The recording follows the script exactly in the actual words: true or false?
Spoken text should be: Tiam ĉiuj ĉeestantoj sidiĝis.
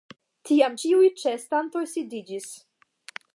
true